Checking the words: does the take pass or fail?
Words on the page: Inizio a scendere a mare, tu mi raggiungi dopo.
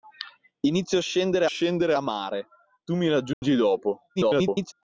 fail